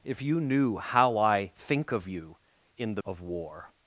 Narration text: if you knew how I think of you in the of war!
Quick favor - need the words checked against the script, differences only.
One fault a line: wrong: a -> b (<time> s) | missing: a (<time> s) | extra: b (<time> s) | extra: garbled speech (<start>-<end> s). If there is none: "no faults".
no faults